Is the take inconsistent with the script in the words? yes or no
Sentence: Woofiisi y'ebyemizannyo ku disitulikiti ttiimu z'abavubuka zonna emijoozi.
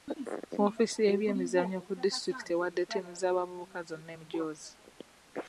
yes